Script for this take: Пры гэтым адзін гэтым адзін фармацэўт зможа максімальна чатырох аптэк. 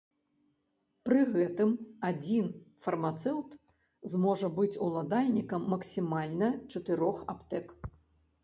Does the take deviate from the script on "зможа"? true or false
true